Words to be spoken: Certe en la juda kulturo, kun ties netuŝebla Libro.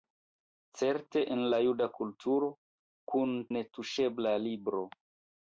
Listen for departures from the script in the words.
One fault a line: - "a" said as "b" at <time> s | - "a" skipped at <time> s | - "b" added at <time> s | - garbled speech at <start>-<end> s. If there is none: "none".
- "ties" skipped at 3.4 s